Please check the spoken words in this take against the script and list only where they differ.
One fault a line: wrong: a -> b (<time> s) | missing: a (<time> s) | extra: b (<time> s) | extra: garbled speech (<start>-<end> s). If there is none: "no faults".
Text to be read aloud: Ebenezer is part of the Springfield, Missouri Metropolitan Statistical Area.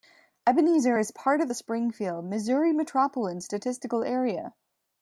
no faults